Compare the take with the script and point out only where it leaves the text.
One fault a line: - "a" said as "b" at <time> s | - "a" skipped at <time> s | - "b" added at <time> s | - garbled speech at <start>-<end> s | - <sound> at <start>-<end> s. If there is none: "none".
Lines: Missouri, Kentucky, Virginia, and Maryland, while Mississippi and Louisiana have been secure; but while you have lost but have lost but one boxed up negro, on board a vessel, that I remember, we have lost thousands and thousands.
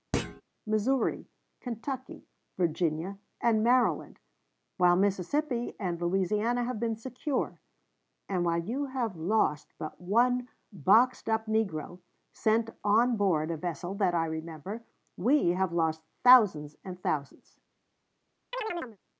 - thud at 0.1-0.4 s
- "but" said as "and" at 8.3 s
- "have lost but" skipped at 10.0 s
- "sent" added at 12.3 s
- chirp at 18.5-19.0 s